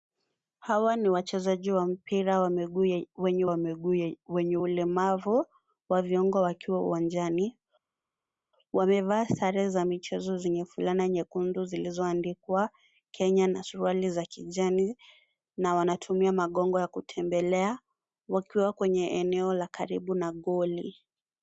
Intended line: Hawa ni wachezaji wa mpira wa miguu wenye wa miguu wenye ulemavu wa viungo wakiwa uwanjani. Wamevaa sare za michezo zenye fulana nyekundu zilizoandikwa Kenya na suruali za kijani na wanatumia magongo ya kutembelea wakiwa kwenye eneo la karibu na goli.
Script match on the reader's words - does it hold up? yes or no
yes